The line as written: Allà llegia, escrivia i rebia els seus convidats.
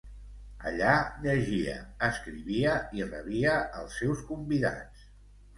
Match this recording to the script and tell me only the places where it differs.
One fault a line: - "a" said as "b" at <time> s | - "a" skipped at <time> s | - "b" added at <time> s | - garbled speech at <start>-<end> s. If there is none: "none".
none